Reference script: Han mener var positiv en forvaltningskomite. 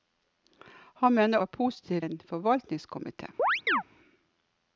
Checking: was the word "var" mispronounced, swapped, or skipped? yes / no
no